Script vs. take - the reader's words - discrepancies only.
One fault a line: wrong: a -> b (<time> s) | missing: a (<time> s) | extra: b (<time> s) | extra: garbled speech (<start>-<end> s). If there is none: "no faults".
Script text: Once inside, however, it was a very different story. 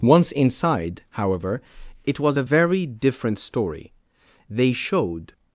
extra: They showed (4.5 s)